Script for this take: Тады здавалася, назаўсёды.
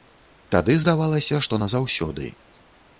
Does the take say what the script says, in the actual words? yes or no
no